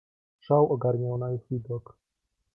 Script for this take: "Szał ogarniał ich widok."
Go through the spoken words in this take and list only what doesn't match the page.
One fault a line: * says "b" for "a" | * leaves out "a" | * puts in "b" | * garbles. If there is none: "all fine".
* puts in "na"